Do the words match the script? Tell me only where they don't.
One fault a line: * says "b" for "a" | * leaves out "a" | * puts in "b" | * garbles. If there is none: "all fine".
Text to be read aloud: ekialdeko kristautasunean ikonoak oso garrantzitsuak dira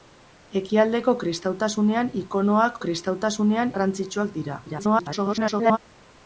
* says "kristautasunean" for "oso"
* garbles